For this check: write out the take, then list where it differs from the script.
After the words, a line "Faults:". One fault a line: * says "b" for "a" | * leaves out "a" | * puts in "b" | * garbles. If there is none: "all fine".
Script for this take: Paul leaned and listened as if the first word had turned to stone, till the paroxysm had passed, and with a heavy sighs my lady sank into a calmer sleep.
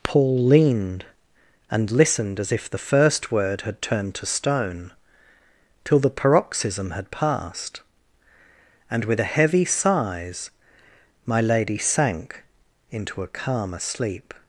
Paul leaned and listened as if the first word had turned to stone, till the paroxysm had passed, and with a heavy sighs my lady sank into a calmer sleep.
Faults:
all fine